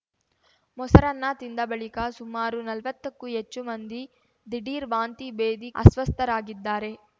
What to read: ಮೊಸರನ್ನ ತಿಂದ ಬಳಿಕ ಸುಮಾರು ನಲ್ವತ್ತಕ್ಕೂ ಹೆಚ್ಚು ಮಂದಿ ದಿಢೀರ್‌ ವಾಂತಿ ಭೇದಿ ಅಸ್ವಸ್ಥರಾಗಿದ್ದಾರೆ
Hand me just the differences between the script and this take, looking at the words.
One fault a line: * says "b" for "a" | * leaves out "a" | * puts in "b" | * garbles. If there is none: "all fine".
all fine